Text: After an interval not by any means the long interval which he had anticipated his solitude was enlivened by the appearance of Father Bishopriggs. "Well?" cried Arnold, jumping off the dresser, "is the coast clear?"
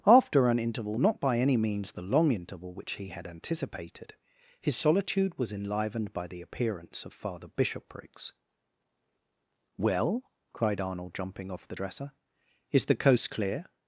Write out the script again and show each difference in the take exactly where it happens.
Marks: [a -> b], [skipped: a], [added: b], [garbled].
After an interval not by any means the long interval which he had anticipated his solitude was enlivened by the appearance of Father Bishopriggs. "Well?" cried Arnold, jumping off the dresser, "is the coast clear?"